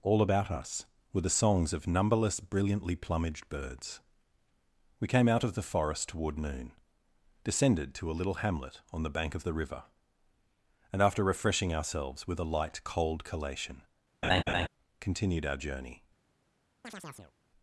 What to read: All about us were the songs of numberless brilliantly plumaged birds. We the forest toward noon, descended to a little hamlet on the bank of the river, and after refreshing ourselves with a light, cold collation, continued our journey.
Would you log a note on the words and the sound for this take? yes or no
yes